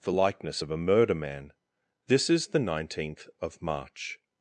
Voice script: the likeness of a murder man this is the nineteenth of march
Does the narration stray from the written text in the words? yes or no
no